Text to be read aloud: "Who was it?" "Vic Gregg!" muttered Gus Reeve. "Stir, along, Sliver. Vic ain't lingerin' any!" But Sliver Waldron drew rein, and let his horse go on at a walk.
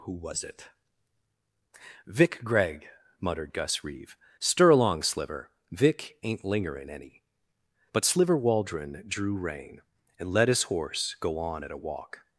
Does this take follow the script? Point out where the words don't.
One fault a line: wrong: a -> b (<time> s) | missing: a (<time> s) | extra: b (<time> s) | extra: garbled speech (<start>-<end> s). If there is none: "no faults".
no faults